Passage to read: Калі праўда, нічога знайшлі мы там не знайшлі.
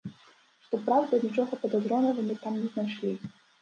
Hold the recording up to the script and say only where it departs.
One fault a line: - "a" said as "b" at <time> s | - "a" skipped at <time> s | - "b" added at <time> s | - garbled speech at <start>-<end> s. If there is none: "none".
- "Калі" said as "Што" at 0.7 s
- "знайшлі" said as "падазронага" at 1.7 s